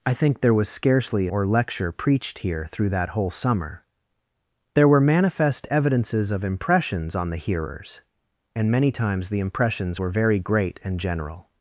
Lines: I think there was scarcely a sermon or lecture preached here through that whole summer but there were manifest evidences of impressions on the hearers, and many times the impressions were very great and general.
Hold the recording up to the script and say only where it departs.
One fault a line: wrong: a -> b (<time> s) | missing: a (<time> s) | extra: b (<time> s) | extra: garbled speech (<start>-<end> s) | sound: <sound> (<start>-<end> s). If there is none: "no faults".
missing: a sermon (1.3 s)
missing: but (3.8 s)